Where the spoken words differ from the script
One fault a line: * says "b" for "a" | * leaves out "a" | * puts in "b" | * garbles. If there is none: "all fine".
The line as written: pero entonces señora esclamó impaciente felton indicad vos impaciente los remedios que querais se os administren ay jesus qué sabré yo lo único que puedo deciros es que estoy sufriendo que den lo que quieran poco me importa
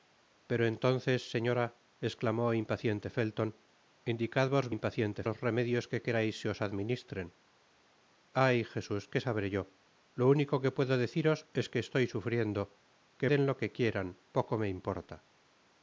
all fine